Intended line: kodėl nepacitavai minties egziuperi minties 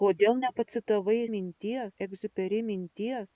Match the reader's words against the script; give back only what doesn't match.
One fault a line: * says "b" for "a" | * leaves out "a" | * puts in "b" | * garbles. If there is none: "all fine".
all fine